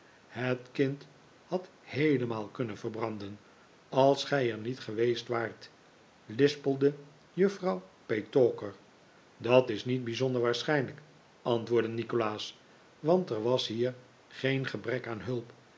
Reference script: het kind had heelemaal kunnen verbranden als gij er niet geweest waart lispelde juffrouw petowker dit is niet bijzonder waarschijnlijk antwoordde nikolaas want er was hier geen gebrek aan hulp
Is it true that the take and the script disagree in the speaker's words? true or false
true